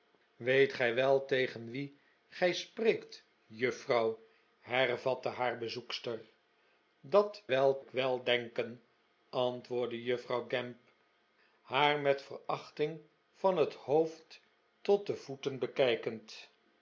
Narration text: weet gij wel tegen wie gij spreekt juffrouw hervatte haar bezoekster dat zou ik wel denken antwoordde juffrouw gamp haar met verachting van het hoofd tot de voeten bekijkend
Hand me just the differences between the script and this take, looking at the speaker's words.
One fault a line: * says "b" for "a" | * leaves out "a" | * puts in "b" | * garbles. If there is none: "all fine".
* says "wel" for "zou"